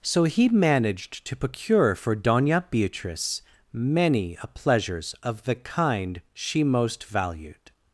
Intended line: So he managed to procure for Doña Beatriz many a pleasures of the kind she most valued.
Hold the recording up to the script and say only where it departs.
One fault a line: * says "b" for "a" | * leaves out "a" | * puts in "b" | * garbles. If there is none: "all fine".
all fine